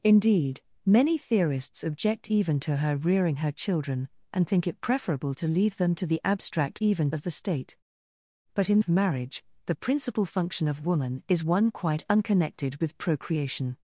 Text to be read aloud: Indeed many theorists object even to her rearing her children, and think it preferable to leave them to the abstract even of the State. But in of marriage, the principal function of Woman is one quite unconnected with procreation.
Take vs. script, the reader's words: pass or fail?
pass